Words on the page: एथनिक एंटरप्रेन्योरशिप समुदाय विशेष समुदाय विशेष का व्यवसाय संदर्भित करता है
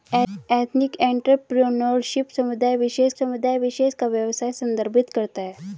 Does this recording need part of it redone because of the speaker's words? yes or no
no